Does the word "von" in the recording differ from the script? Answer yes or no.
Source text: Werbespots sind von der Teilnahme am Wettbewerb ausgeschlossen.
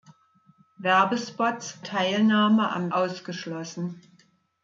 yes